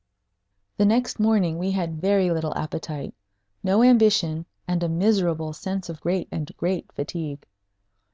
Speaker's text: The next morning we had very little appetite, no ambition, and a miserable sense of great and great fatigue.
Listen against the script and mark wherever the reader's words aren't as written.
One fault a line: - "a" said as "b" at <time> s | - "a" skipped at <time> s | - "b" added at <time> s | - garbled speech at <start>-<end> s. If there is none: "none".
none